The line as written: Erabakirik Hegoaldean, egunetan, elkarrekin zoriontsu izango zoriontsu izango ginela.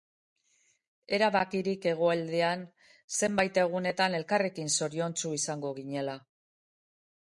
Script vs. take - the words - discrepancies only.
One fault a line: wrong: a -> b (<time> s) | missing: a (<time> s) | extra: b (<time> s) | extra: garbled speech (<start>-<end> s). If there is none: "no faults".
extra: zenbait (3.2 s)
missing: zoriontsu izango (5.8 s)